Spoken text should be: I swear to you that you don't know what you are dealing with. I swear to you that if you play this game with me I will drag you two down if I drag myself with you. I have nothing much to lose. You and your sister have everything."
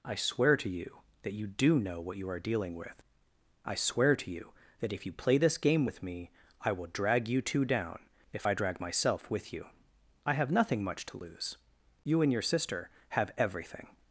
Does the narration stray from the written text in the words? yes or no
yes